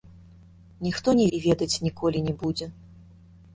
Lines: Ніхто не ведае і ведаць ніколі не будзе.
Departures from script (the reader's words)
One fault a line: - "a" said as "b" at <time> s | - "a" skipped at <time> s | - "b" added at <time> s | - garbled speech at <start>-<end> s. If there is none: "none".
- "ведае" skipped at 1.3 s